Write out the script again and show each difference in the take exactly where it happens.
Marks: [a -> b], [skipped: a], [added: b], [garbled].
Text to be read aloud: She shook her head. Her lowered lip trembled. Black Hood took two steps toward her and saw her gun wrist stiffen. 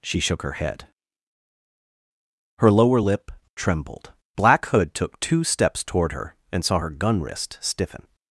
She shook her head. Her [lowered -> lower] lip trembled. Black Hood took two steps toward her and saw her gun wrist stiffen.